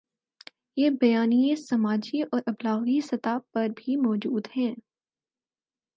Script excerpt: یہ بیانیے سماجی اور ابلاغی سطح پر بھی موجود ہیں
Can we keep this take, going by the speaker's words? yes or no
yes